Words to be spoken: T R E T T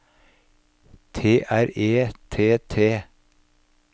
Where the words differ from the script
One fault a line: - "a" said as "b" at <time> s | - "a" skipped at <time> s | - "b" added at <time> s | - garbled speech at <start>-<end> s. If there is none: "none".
none